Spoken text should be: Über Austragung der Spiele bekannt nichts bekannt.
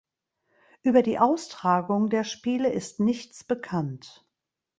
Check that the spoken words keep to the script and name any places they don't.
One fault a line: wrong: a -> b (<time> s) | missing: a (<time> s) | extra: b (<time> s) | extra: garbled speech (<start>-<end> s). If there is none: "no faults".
extra: die (1.0 s)
wrong: bekannt -> ist (2.7 s)